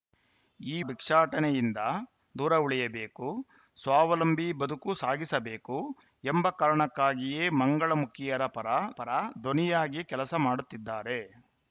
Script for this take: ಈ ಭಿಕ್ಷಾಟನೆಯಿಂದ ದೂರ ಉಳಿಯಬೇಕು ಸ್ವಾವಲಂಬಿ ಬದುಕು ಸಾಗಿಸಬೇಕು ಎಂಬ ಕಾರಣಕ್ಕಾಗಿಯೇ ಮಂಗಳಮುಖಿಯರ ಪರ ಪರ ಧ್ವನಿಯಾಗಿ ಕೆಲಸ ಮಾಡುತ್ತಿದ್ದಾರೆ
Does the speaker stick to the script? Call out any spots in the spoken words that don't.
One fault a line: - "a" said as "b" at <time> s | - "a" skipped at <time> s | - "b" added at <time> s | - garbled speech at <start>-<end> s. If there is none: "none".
none